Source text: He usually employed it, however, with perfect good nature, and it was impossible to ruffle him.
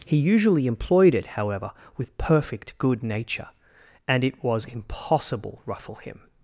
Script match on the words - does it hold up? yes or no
no